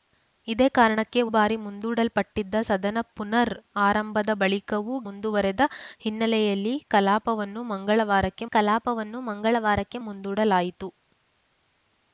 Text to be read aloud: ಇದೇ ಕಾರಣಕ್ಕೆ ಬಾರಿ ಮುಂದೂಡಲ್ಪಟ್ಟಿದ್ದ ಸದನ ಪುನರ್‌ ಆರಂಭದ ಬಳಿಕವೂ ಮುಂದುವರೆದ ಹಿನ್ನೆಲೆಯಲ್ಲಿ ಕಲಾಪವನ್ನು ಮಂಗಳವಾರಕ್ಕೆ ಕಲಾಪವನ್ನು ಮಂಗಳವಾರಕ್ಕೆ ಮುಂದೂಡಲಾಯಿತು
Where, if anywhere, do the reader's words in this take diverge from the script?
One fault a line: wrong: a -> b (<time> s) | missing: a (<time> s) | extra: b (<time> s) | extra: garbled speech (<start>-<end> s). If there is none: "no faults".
no faults